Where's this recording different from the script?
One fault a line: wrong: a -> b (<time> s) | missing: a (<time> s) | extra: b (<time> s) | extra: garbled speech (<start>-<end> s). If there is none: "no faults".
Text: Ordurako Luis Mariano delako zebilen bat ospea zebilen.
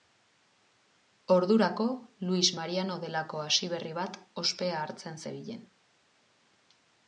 wrong: zebilen -> hasiberri (3.5 s)
extra: hartzen (4.9 s)